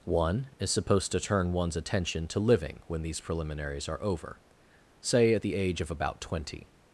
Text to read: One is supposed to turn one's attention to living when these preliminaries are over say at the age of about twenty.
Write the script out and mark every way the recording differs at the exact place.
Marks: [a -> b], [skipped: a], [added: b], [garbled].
One is supposed to turn one's attention to living when these preliminaries are over say at the age of about twenty.